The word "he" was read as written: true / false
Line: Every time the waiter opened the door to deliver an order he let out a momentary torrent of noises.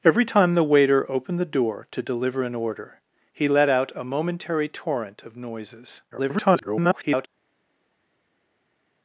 true